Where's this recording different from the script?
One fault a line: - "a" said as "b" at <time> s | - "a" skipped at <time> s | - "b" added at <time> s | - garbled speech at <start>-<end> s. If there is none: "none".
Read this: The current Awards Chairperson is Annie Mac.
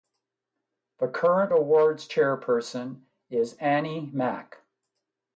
none